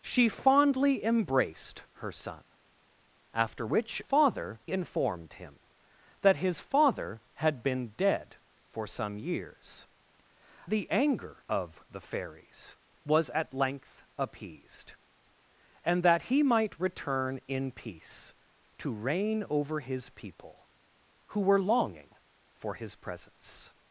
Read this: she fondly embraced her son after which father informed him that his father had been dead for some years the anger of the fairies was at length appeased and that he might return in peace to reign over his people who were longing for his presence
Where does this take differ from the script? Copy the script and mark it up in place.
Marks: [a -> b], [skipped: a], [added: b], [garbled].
she fondly embraced her son after which father informed him that his father had been dead for some years the anger of the fairies was at length appeased and that he might return in peace to reign over his people who were longing for his presence